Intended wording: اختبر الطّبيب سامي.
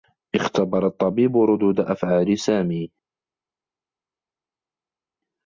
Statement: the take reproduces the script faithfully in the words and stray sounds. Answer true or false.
false